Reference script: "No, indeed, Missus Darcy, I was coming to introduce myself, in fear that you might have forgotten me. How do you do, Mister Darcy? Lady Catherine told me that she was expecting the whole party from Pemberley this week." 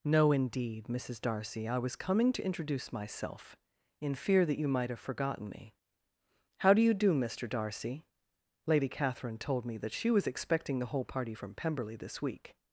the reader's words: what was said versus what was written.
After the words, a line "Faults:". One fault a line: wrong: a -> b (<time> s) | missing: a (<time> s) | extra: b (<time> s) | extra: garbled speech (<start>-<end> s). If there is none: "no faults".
"No, indeed, Missus Darcy, I was coming to introduce myself, in fear that you might have forgotten me. How do you do, Mister Darcy? Lady Catherine told me that she was expecting the whole party from Pemberley this week."
Faults:
no faults